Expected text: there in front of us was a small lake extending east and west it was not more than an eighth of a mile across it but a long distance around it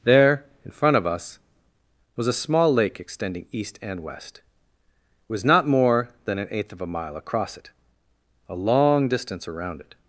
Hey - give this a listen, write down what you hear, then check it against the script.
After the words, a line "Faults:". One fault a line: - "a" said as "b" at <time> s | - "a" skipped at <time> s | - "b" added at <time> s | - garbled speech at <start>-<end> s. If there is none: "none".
there in front of us was a small lake extending east and west it was not more than an eighth of a mile across it a long distance around it
Faults:
- "but" skipped at 7.7 s